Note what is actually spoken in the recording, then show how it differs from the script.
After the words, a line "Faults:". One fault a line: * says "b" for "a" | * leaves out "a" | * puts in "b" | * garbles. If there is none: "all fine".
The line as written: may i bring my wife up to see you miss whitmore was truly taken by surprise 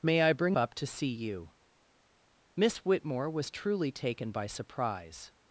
may i bring up to see you miss whitmore was truly taken by surprise
Faults:
* leaves out "my wife"